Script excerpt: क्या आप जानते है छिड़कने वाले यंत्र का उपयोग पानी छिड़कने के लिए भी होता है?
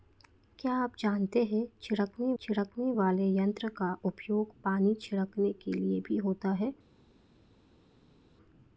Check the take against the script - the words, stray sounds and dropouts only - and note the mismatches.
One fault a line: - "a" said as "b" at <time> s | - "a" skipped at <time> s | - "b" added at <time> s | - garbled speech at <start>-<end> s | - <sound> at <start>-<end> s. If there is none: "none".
- "छिड़कने" added at 2.4 s